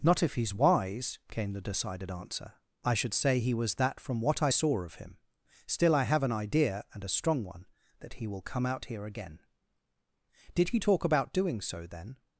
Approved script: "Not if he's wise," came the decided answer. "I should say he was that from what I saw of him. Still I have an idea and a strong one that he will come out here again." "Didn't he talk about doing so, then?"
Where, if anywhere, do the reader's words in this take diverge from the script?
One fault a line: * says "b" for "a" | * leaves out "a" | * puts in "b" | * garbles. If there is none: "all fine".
* says "Did" for "Didn't"